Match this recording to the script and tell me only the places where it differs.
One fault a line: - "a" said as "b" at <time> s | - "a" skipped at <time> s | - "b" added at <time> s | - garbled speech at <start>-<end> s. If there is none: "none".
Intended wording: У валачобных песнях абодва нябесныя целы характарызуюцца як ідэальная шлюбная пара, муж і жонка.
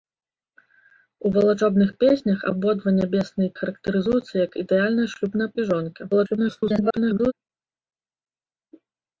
- "целы" skipped at 3.5 s
- "пара муж" skipped at 5.5 s
- garbled speech at 6.1-7.3 s